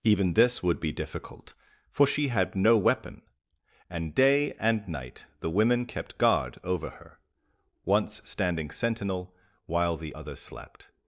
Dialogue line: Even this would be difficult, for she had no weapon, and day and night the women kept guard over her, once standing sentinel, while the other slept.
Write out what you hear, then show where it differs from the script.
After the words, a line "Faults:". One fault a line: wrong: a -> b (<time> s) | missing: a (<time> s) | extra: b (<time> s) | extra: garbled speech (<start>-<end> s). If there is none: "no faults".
Even this would be difficult, for she had no weapon, and day and night the women kept guard over her, once standing sentinel, while the other slept.
Faults:
no faults